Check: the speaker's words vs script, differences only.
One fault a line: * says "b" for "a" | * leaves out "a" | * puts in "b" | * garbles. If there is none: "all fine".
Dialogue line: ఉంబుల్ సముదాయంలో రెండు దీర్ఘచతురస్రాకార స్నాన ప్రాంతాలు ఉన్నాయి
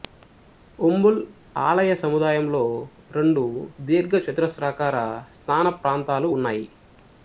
* puts in "ఆలయ"